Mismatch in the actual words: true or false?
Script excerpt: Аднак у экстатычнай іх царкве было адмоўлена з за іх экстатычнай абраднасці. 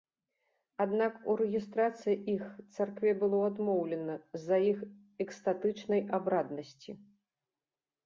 true